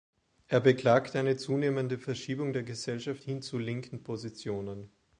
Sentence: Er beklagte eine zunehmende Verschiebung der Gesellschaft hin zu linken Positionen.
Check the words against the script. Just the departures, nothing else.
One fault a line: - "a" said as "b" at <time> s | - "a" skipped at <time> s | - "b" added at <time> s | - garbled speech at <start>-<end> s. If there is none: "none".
none